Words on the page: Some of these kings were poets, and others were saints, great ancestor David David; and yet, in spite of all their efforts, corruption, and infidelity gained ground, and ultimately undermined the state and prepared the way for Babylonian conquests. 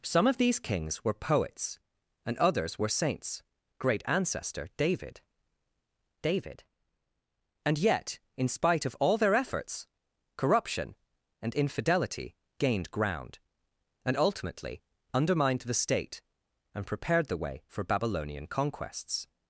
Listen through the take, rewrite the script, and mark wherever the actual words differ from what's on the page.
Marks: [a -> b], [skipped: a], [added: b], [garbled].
Some of these kings were poets, and others were saints, great ancestor David David; and yet, in spite of all their efforts, corruption, and infidelity gained ground, and ultimately undermined the state and prepared the way for Babylonian conquests.